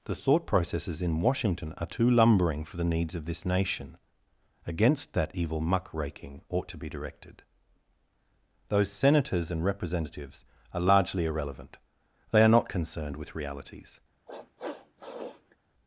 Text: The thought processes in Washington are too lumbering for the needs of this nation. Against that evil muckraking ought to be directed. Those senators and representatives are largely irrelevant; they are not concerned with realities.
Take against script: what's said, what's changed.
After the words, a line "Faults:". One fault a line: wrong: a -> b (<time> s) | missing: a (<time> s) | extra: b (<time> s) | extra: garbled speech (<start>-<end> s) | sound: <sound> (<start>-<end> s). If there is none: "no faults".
The thought processes in Washington are too lumbering for the needs of this nation. Against that evil muckraking ought to be directed. Those senators and representatives are largely irrelevant; they are not concerned with realities.
Faults:
sound: sniff (14.3-15.6 s)